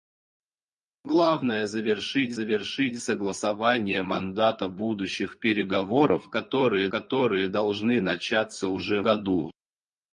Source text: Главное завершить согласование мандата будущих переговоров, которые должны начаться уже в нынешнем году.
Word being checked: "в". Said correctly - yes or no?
no